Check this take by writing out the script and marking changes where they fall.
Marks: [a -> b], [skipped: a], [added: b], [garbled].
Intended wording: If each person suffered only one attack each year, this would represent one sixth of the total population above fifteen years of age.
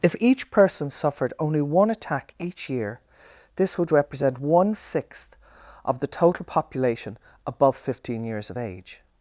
If each person suffered only one attack each year, this would represent one sixth of the total population above fifteen years of age.